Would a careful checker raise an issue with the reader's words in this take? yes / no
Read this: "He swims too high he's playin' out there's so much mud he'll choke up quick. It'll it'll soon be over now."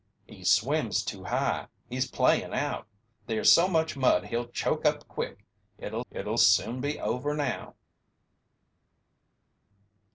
no